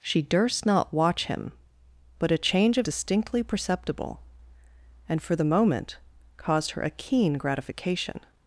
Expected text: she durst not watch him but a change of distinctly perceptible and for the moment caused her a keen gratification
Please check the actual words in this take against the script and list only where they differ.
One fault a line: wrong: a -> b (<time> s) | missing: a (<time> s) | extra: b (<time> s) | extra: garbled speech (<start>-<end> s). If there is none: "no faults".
no faults